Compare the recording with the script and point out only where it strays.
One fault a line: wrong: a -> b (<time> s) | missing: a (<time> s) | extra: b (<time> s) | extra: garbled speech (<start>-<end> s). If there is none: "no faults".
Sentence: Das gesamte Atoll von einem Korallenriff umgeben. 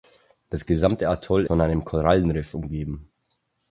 no faults